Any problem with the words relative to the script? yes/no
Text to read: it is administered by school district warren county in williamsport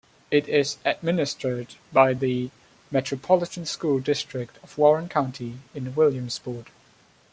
yes